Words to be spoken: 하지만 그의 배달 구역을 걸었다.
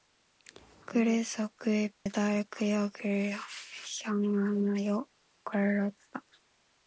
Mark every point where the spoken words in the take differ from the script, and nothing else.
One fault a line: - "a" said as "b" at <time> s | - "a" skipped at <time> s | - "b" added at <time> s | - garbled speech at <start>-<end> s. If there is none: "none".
- "하지만" said as "그래서" at 0.9 s
- "향하여" added at 4.0 s